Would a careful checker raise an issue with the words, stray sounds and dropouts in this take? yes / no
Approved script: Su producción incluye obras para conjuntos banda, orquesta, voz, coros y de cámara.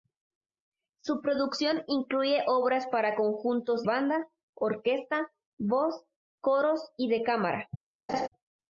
yes